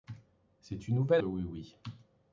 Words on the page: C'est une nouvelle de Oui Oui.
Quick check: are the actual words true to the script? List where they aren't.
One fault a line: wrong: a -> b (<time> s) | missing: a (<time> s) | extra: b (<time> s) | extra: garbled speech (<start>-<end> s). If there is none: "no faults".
no faults